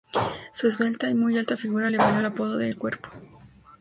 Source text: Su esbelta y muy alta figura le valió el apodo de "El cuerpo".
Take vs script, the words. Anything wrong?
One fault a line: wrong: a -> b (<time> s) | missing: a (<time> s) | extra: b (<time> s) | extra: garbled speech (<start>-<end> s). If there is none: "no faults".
no faults